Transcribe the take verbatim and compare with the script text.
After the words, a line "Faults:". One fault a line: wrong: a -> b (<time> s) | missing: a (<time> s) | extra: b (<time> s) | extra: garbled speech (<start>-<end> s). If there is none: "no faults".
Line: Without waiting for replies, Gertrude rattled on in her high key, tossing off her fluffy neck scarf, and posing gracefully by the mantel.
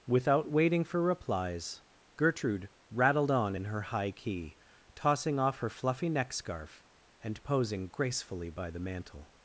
Without waiting for replies, Gertrude rattled on in her high key, tossing off her fluffy neck scarf, and posing gracefully by the mantel.
Faults:
no faults